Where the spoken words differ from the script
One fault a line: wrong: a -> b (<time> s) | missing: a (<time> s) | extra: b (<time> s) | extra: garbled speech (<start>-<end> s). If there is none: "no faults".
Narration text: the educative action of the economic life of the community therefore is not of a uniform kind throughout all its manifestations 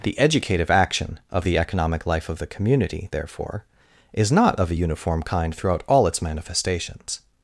no faults